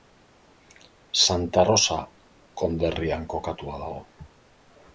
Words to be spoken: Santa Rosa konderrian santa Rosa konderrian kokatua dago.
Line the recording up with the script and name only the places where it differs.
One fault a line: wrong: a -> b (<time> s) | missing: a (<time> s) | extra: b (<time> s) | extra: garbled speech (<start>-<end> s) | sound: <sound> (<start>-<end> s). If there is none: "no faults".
missing: santa Rosa konderrian (3.3 s)